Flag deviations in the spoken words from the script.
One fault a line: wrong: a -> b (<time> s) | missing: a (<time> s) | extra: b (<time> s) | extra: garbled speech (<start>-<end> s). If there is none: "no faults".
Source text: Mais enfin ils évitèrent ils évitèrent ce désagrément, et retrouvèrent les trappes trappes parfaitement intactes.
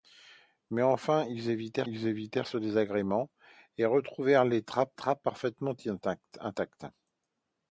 no faults